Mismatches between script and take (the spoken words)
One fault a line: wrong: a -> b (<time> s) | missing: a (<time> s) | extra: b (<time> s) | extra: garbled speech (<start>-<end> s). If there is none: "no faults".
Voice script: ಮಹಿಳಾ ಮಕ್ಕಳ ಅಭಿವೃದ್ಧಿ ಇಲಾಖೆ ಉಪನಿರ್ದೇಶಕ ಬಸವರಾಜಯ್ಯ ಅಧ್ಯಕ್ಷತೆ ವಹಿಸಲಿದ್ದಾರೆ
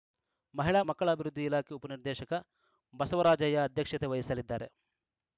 no faults